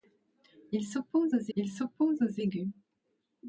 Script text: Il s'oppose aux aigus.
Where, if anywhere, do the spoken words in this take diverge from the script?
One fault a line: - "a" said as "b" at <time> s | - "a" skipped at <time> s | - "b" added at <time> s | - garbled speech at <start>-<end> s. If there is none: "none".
- "il s'oppose aux" added at 1.5 s